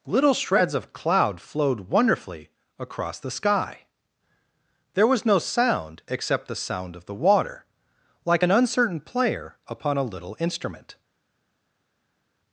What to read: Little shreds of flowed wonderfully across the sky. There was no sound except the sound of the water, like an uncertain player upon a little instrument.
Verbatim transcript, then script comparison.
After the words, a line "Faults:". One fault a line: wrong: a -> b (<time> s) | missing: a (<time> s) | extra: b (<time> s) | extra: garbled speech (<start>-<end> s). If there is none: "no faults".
Little shreds of cloud flowed wonderfully across the sky. There was no sound except the sound of the water, like an uncertain player upon a little instrument.
Faults:
extra: cloud (0.9 s)